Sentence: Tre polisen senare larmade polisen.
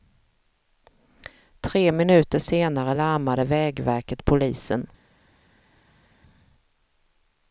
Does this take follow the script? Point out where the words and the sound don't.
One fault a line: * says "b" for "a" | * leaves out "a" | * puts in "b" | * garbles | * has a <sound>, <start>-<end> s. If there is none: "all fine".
* says "minuter" for "polisen"
* puts in "vägverket"